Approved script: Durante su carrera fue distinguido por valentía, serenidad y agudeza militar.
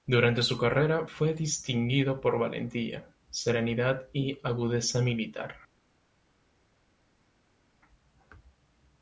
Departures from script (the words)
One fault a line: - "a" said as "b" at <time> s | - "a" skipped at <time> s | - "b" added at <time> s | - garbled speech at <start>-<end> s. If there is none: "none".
none